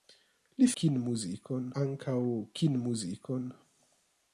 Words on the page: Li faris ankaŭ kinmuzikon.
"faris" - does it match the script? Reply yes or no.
no